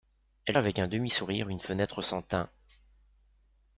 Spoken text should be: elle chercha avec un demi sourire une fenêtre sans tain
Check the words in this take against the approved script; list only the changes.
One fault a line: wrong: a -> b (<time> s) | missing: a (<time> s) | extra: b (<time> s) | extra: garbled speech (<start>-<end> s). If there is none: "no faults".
missing: chercha (0.6 s)